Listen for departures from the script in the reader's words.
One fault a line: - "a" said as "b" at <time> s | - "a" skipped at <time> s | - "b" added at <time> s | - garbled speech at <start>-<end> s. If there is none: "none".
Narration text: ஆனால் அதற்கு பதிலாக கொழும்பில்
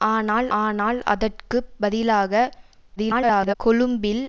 - "ஆனால்" added at 0.6 s
- garbled speech at 3.0-3.5 s